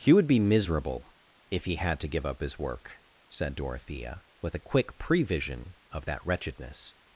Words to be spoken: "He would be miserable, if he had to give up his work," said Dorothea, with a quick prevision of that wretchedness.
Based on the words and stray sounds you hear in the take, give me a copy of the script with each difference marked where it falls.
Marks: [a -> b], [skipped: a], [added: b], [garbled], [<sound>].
"He would be miserable, if he had to give up his work," said Dorothea, with a quick prevision of that wretchedness.